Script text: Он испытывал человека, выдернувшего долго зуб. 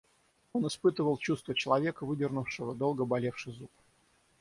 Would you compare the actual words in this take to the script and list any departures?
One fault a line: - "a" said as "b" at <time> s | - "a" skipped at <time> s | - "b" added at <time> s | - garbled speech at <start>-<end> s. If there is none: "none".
- "чувство" added at 1.2 s
- "болевший" added at 3.0 s